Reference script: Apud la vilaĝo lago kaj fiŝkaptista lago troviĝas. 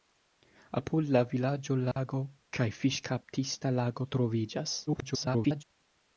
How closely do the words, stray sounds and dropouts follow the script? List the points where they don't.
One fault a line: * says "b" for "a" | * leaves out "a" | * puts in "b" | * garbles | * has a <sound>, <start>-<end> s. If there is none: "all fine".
* has a dropout, 1.9-2.0 s
* garbles